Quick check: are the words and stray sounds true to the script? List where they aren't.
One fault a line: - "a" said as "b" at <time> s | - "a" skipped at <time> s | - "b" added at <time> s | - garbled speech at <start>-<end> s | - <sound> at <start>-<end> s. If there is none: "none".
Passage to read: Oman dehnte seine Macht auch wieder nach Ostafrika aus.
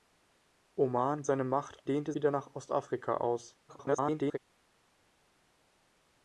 - "dehnte" skipped at 1.2 s
- "auch" said as "dehnte" at 1.9 s
- garbled speech at 3.7-4.4 s